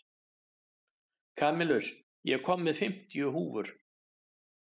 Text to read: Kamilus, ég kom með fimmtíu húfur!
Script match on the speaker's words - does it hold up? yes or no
yes